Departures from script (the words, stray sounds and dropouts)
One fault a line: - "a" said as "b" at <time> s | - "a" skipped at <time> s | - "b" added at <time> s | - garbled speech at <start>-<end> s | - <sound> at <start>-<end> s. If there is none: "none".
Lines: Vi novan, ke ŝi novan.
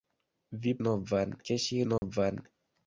- dropout at 2.0-2.0 s